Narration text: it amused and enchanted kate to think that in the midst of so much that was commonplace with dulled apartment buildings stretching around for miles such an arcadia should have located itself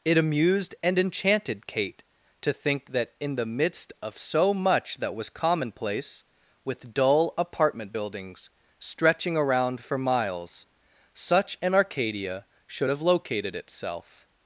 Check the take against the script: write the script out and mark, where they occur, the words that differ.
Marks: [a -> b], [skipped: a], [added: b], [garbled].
it amused and enchanted kate to think that in the midst of so much that was commonplace with [dulled -> dull] apartment buildings stretching around for miles such an arcadia should have located itself